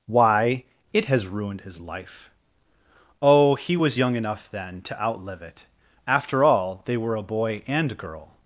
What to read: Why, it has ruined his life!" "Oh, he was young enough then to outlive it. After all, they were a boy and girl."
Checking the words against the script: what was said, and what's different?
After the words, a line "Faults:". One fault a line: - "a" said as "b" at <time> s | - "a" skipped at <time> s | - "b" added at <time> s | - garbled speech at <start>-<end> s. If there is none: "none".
Why, it has ruined his life!" "Oh, he was young enough then to outlive it. After all, they were a boy and girl."
Faults:
none